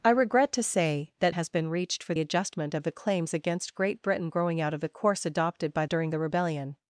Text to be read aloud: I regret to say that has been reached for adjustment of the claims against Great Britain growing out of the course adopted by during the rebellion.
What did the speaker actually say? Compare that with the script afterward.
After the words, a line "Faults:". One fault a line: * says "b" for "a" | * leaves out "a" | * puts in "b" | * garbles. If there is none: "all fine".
I regret to say that has been reached for adjustment of the claims against Great Britain growing out of the course adopted by during the rebellion.
Faults:
all fine